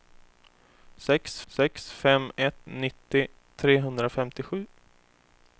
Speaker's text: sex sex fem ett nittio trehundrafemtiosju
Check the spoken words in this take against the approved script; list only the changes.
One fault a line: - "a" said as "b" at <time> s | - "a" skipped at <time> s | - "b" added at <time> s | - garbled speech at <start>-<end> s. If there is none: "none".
none